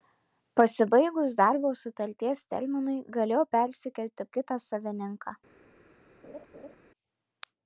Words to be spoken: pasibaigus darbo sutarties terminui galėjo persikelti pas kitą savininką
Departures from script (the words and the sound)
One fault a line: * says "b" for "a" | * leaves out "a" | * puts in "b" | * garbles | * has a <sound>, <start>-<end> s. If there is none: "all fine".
* leaves out "pas"
* has a laugh, 6.2-6.8 s